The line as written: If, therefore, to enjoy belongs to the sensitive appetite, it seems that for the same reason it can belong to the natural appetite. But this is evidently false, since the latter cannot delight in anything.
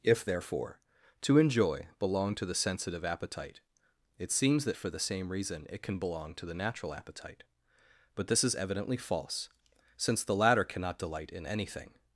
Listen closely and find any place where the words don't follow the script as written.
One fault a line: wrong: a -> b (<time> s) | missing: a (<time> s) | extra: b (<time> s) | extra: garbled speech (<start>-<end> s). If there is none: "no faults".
wrong: belongs -> belong (2.0 s)